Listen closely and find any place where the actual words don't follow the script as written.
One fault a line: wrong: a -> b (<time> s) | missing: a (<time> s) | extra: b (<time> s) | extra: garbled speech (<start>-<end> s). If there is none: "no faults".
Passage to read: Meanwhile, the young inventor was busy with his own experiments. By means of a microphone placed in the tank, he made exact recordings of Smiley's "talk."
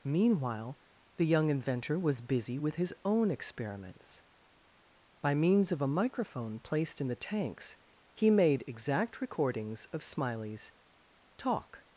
wrong: tank -> tanks (7.2 s)